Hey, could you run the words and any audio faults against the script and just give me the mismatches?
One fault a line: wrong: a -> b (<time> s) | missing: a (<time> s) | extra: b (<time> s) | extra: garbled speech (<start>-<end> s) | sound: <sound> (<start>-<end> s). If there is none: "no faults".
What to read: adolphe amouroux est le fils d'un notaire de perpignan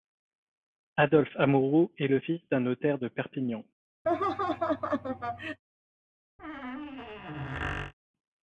sound: laugh (4.0-5.6 s)
sound: squeak (6.4-7.9 s)